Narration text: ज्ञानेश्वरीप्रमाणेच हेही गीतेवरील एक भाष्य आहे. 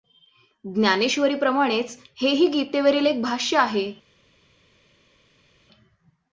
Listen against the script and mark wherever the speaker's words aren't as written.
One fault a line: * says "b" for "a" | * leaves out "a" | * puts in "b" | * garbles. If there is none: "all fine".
all fine